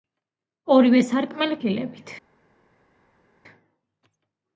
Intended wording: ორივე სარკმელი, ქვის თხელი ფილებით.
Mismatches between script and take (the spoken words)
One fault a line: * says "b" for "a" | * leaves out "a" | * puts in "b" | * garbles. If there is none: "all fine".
* leaves out "ქვის თხელი"